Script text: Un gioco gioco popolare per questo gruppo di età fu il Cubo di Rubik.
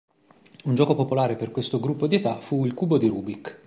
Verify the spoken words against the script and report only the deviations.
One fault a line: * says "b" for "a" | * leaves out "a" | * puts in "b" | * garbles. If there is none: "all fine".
* leaves out "gioco"